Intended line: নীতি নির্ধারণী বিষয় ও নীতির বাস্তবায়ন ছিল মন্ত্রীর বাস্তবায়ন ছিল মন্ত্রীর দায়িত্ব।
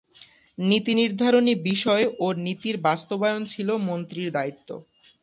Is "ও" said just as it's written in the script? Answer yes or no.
yes